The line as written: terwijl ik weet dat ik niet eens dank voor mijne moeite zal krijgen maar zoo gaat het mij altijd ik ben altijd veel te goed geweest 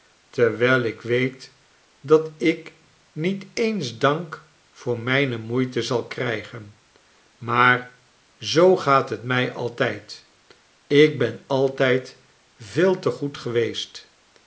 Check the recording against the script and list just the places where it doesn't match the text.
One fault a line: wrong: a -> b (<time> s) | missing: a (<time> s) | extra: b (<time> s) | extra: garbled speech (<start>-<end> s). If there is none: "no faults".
no faults